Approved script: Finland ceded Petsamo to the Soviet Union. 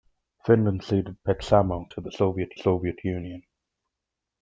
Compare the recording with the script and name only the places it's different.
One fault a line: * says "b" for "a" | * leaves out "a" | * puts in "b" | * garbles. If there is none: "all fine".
* puts in "Soviet"